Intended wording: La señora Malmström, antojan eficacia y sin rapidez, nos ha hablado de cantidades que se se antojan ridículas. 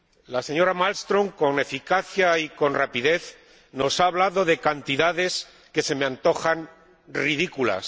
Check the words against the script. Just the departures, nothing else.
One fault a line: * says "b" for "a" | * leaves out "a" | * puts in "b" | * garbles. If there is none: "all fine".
* says "con" for "antojan"
* says "con" for "sin"
* says "me" for "se"